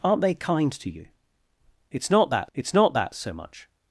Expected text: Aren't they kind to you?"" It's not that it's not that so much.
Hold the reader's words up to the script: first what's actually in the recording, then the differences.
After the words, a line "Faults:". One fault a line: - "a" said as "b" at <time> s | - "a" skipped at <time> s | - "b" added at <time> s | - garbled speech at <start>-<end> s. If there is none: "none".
Aren't they kind to you?"" It's not that it's not that so much.
Faults:
none